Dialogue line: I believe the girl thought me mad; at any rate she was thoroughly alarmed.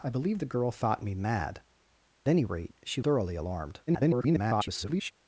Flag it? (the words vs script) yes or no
yes